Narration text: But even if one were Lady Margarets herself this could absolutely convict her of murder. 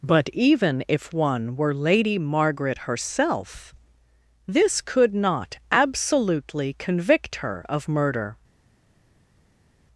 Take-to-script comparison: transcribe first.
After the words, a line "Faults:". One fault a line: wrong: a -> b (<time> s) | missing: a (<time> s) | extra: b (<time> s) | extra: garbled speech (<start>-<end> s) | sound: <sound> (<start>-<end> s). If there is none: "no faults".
But even if one were Lady Margaret herself this could not absolutely convict her of murder.
Faults:
wrong: Margarets -> Margaret (2.2 s)
extra: not (5.1 s)